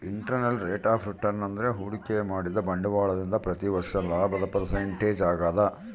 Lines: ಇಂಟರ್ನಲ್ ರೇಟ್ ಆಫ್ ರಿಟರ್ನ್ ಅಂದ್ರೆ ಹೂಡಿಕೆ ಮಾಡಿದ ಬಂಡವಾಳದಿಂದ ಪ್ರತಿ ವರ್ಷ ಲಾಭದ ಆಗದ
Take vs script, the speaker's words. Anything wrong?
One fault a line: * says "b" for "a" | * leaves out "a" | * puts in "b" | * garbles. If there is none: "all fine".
* puts in "ಪರ್ಸೆಂಟೇಜ್"